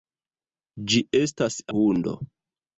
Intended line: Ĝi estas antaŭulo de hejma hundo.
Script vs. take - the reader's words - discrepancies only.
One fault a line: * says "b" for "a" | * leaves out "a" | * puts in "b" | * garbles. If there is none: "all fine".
* leaves out "antaŭulo de hejma"